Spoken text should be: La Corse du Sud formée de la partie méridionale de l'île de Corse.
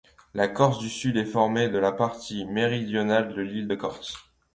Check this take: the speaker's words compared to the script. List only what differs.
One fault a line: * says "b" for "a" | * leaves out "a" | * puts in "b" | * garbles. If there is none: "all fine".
* puts in "est"